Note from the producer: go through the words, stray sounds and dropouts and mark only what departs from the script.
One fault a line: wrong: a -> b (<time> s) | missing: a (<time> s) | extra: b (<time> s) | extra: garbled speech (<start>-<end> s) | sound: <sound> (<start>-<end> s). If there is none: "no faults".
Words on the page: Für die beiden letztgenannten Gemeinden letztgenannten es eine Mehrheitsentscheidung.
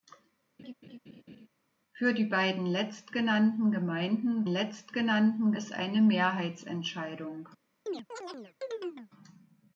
sound: laugh (0.6-1.5 s)
sound: chirp (7.9-9.1 s)